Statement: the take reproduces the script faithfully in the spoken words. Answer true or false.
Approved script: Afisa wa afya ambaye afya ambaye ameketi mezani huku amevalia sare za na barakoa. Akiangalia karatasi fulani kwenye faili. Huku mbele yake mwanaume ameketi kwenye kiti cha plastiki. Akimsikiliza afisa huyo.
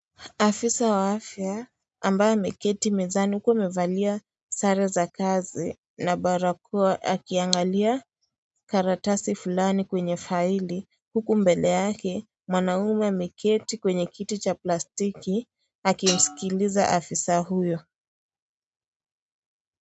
false